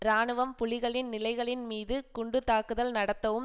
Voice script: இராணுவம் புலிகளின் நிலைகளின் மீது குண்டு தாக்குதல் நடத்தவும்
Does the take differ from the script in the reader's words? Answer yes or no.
no